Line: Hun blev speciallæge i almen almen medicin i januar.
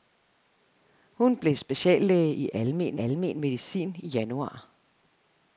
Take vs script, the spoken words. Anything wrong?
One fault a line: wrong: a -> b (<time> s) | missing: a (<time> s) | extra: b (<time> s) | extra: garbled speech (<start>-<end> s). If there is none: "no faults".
no faults